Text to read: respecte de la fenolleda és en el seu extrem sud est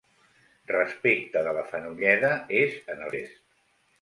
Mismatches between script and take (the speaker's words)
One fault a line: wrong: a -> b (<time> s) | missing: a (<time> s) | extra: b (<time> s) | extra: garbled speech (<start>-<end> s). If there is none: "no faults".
missing: seu extrem sud (3.1 s)